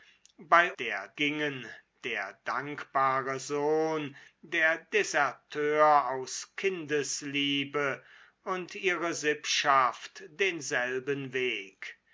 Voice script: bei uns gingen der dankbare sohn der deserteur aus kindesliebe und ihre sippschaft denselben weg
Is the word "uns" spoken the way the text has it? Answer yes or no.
no